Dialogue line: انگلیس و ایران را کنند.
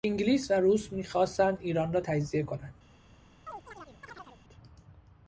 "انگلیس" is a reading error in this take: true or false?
false